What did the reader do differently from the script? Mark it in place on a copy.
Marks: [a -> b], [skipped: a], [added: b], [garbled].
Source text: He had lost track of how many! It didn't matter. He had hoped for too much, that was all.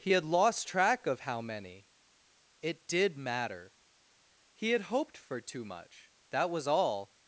He had lost track of how many! It [didn't -> did] matter. He had hoped for too much, that was all.